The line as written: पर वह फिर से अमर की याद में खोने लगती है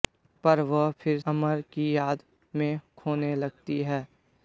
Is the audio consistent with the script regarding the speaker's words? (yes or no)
no